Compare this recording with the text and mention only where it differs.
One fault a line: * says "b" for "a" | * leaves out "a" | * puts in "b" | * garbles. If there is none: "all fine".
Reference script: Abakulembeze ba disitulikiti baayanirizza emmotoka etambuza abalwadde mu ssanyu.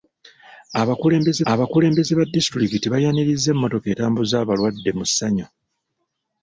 * puts in "abakulembeze"